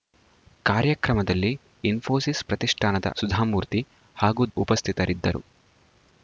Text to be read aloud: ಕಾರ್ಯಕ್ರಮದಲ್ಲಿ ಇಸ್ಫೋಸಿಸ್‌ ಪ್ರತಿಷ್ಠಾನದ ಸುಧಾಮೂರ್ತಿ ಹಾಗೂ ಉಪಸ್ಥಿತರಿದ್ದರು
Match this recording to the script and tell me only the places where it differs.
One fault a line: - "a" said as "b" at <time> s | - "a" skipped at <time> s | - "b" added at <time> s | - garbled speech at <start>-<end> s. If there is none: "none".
none